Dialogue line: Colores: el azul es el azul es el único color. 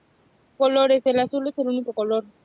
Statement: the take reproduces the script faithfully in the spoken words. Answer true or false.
false